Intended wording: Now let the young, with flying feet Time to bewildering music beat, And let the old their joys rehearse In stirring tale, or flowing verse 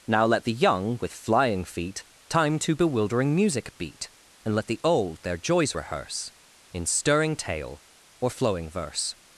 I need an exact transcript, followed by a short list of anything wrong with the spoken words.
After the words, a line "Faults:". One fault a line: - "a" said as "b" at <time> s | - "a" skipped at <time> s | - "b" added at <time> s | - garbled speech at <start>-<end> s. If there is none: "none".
Now let the young, with flying feet Time to bewildering music beat, And let the old their joys rehearse In stirring tale, or flowing verse
Faults:
none